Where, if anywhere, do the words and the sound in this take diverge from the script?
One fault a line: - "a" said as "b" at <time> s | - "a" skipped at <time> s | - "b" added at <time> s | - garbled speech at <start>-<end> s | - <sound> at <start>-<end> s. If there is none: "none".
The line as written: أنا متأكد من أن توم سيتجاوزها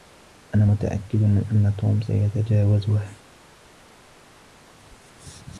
none